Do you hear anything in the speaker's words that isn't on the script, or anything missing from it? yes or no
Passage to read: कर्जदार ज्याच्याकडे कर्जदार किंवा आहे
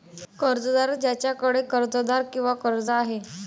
yes